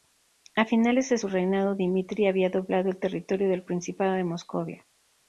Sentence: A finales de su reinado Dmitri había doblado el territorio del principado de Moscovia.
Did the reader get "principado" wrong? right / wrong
right